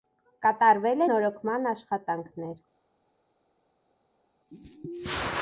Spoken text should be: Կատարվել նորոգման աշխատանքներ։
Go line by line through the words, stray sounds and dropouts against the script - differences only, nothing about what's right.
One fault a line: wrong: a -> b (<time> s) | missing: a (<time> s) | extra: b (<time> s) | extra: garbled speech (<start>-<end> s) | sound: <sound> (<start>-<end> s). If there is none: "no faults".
no faults